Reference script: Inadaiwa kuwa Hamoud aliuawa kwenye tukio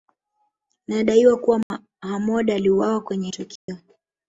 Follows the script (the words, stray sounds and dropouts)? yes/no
no